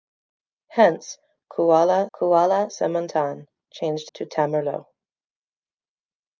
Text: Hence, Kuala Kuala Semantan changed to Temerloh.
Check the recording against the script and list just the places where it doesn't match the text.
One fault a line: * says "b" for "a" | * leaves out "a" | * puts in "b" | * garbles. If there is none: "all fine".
all fine